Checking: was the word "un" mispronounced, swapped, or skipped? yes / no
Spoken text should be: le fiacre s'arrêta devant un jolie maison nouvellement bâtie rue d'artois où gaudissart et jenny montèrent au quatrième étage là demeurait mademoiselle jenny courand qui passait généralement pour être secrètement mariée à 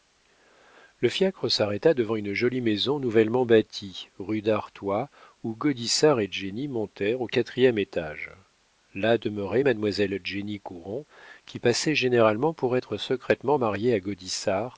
yes